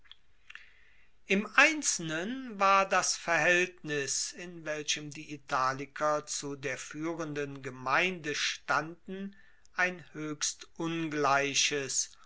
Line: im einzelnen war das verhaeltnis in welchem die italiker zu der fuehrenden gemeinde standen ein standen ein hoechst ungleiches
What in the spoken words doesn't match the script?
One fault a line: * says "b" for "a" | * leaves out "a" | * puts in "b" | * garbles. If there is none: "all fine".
* leaves out "standen ein"